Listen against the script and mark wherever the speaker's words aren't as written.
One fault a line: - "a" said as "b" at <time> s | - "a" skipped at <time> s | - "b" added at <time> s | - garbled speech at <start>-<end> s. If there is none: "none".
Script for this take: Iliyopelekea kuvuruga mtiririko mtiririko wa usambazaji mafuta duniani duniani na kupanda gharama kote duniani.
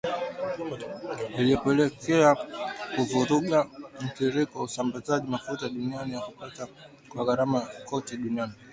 - "mtiririko" skipped at 4.6 s
- "duniani" skipped at 6.1 s
- "kwa" added at 7.1 s